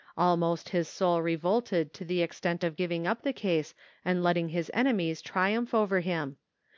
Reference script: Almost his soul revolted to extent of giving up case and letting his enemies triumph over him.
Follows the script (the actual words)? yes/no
no